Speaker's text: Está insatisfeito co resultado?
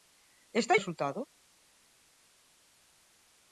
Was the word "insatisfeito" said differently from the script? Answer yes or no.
yes